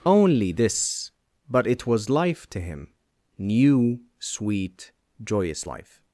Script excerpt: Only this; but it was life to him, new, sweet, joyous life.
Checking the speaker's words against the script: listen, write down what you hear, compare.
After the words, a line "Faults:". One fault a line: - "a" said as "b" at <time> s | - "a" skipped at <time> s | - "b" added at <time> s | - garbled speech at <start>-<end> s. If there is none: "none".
Only this; but it was life to him, new, sweet, joyous life.
Faults:
none